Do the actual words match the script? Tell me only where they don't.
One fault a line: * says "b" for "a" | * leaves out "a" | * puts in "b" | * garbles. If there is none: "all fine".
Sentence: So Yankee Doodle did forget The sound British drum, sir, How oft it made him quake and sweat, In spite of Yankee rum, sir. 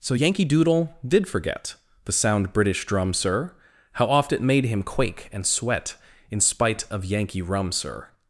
all fine